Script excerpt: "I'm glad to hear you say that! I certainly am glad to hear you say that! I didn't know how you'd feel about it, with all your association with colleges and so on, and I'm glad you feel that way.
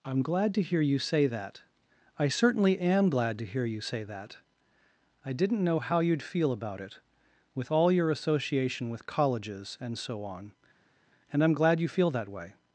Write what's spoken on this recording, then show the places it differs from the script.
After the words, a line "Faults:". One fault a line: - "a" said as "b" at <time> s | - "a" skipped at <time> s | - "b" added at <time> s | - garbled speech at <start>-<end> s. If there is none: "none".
"I'm glad to hear you say that! I certainly am glad to hear you say that! I didn't know how you'd feel about it, with all your association with colleges and so on, and I'm glad you feel that way.
Faults:
none